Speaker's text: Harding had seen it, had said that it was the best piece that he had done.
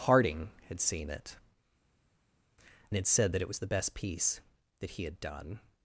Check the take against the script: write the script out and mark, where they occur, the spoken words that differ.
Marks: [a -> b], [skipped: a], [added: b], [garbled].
Harding had seen it, had said that it was the best piece that he had done.